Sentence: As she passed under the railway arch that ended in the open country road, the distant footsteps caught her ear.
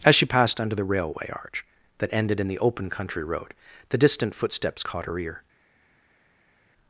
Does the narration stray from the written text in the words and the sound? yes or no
no